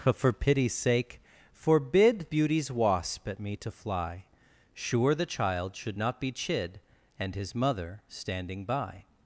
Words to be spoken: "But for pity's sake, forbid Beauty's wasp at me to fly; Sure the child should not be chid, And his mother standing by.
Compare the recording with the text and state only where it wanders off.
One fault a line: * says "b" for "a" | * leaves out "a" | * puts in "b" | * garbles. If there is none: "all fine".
all fine